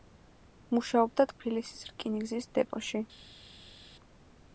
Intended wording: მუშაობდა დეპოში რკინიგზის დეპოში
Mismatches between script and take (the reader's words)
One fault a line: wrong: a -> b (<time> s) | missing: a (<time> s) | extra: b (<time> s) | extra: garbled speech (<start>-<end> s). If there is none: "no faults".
wrong: დეპოში -> ტფილისის (1.3 s)